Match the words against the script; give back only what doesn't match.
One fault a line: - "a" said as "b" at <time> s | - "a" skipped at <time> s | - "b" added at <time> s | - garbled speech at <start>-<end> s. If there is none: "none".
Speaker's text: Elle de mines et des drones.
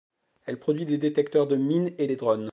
- "produit des détecteurs" added at 0.6 s